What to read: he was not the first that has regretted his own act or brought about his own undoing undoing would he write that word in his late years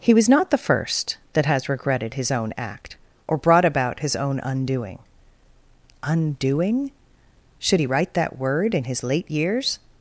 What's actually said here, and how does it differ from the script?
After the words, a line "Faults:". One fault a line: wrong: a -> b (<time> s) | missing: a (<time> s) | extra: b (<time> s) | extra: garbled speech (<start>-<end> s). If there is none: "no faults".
he was not the first that has regretted his own act or brought about his own undoing undoing should he write that word in his late years
Faults:
wrong: would -> should (7.6 s)